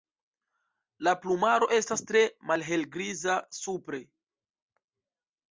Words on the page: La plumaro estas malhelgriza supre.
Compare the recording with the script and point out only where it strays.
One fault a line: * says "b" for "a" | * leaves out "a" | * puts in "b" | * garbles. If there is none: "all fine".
* puts in "tre"